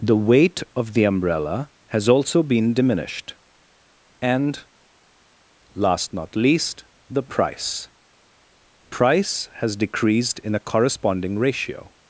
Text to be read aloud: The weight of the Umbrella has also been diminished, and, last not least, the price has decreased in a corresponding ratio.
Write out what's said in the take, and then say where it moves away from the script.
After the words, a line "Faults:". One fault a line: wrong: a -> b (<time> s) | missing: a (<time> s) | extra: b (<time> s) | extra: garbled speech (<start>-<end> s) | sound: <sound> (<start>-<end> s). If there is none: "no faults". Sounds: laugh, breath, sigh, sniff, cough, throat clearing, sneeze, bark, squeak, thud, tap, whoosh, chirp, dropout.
The weight of the Umbrella has also been diminished, and, last not least, the price price has decreased in a corresponding ratio.
Faults:
extra: price (8.9 s)